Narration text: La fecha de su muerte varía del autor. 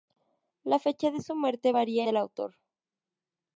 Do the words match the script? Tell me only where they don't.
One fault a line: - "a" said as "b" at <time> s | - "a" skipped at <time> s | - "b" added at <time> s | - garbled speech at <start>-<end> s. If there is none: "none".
none